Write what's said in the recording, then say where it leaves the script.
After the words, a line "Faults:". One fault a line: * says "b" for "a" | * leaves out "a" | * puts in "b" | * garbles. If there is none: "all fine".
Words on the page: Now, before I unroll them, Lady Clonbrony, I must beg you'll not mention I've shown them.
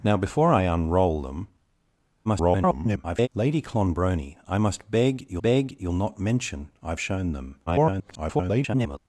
Now, before I unroll them, [garbled] Lady Clonbrony, I must beg you'll beg you'll not mention I've shown them. [garbled]
Faults:
* garbles
* puts in "beg you'll"
* garbles